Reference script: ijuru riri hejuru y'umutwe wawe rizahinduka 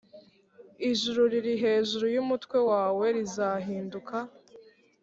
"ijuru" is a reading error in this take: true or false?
false